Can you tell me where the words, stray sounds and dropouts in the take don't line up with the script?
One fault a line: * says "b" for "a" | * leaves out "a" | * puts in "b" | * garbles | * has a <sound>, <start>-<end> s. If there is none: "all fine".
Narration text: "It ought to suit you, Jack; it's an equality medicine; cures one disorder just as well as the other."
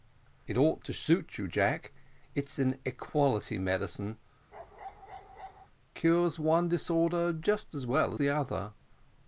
* has a bark, 4.5-5.7 s
* leaves out "as"